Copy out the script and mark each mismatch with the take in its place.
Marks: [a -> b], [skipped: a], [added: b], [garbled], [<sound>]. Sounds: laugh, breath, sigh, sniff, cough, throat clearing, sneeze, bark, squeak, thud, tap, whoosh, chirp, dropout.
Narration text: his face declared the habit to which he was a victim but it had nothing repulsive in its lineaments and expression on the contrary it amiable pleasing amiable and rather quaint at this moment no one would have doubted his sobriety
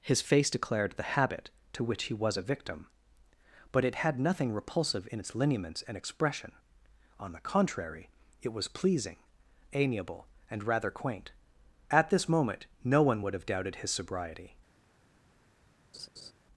his face declared the habit to which he was a victim but it had nothing repulsive in its lineaments and expression on the contrary it [amiable -> was] pleasing amiable and rather quaint at this moment no one would have doubted his sobriety [laugh]